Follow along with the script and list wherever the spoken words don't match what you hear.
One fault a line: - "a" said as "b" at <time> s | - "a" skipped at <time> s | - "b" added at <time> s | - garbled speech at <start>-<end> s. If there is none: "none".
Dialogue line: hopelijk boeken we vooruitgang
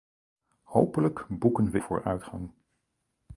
none